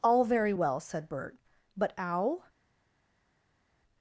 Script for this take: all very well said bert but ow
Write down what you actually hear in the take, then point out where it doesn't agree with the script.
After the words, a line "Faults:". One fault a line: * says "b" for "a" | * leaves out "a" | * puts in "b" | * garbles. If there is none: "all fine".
all very well said bert but ow
Faults:
all fine